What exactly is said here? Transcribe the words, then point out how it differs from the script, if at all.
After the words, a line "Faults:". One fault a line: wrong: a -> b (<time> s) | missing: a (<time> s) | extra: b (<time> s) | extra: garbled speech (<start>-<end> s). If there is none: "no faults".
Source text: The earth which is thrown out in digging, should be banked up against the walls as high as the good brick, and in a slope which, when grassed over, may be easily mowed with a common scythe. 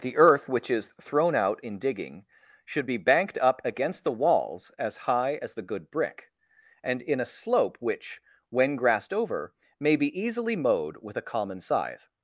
The earth which is thrown out in digging, should be banked up against the walls as high as the good brick, and in a slope which, when grassed over, may be easily mowed with a common scythe.
Faults:
no faults